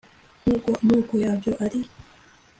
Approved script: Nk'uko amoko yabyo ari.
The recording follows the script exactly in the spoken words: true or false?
true